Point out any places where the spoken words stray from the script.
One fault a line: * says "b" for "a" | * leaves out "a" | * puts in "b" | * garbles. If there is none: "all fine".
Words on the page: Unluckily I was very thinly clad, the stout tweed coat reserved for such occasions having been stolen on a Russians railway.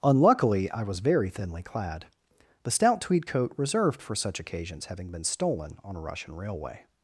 * says "Russian" for "Russians"